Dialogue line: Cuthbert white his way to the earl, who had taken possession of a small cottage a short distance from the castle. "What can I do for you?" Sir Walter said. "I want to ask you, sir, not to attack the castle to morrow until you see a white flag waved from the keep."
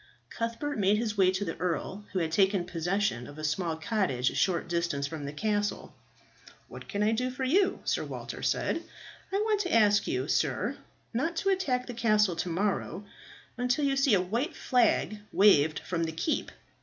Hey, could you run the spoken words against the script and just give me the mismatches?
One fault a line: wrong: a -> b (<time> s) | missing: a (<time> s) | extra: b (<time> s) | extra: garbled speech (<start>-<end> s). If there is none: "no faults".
wrong: white -> made (0.8 s)